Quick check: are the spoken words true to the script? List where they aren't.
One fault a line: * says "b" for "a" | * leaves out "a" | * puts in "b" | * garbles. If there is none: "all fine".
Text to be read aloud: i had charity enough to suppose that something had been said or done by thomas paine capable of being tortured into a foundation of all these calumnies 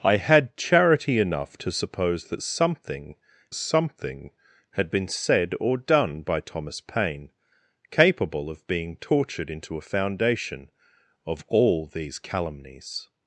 * puts in "something"